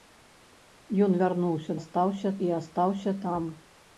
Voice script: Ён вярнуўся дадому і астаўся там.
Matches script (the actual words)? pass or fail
fail